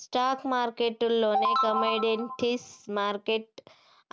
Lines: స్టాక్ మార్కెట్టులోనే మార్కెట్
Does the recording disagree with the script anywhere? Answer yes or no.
yes